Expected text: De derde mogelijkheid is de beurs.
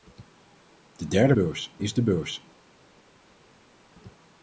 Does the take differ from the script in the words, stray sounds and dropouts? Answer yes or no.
yes